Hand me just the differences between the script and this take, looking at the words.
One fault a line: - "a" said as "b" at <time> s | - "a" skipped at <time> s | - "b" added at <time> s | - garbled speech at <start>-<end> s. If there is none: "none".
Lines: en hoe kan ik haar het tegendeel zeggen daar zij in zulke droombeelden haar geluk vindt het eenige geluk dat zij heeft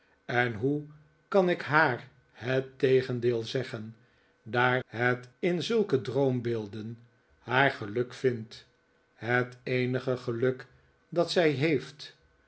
- "zij" said as "het" at 4.8 s